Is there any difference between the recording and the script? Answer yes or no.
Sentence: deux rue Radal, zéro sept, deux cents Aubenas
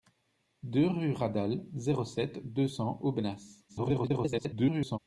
yes